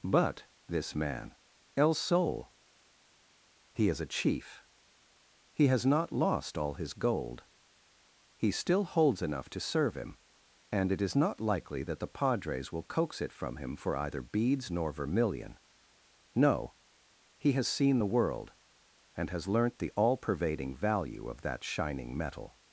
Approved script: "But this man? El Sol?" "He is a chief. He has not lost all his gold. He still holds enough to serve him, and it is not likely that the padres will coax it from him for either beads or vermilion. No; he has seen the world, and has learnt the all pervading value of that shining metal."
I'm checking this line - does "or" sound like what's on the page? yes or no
no